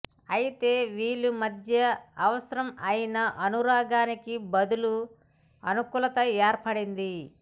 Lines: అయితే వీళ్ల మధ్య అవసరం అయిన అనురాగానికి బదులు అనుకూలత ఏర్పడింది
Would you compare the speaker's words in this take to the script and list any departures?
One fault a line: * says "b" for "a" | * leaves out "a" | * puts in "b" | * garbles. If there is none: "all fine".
all fine